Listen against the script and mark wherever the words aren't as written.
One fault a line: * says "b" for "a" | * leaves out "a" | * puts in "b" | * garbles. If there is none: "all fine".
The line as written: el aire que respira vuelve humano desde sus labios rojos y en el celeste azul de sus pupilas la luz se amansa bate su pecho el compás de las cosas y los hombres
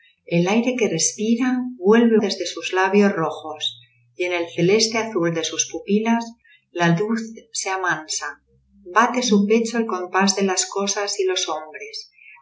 * leaves out "humano"